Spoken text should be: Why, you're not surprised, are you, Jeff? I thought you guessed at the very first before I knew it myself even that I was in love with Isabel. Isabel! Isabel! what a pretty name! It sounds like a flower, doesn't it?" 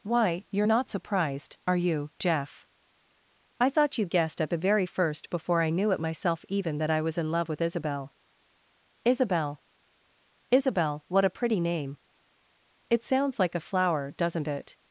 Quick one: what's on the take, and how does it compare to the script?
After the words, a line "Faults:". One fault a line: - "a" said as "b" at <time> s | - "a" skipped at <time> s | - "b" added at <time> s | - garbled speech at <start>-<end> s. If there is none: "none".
Why, you're not surprised, are you, Jeff? I thought you guessed at the very first before I knew it myself even that I was in love with Isabel. Isabel! Isabel! what a pretty name! It sounds like a flower, doesn't it?"
Faults:
none